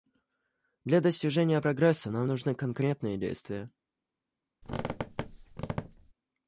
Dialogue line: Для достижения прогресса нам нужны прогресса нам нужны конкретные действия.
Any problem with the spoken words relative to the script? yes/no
yes